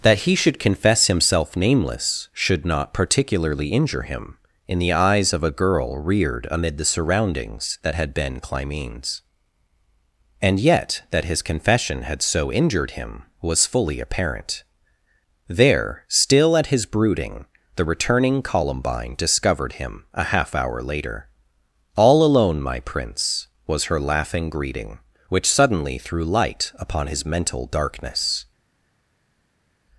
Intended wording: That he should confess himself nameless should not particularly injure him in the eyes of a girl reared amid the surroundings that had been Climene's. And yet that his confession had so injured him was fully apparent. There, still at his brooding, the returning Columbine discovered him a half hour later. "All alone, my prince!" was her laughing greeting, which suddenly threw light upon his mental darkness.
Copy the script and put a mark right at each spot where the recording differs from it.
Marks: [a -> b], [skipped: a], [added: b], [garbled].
That he should confess himself nameless should not particularly injure him in the eyes of a girl reared amid the surroundings that had been Climene's. And yet that his confession had so injured him was fully apparent. There, still at his brooding, the returning Columbine discovered him a half hour later. "All alone, my prince!" was her laughing greeting, which suddenly threw light upon his mental darkness.